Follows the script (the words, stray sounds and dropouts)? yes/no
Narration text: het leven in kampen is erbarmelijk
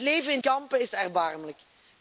yes